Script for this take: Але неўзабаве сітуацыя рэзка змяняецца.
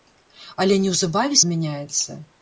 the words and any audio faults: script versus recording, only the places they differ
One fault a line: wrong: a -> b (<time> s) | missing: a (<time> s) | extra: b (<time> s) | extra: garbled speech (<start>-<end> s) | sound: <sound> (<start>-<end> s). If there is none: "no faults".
missing: сітуацыя рэзка (1.4 s)